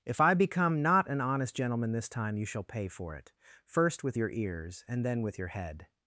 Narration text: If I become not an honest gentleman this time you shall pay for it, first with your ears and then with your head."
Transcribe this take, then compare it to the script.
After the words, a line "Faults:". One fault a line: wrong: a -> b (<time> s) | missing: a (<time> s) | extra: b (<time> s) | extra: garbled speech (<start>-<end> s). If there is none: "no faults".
If I become not an honest gentleman this time you shall pay for it, first with your ears and then with your head."
Faults:
no faults